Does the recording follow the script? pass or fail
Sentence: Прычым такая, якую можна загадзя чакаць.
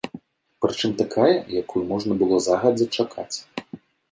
fail